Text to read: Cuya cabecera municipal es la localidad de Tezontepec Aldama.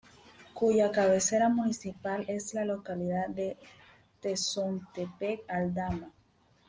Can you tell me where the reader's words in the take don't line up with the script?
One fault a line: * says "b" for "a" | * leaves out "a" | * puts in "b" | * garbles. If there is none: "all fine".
all fine